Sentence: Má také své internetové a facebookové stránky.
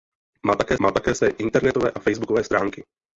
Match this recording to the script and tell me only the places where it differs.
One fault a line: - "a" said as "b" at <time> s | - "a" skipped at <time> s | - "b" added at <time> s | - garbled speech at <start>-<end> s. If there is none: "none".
- "má také" added at 0.8 s